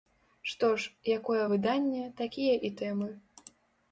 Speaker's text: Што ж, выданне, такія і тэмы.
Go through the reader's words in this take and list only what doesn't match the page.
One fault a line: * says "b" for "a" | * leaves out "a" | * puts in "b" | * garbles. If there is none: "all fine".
* puts in "якое"